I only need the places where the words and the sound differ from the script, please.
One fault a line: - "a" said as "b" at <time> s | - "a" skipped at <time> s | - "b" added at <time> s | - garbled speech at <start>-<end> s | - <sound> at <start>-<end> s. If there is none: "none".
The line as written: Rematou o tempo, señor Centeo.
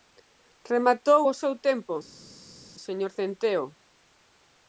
- "seu" added at 1.4 s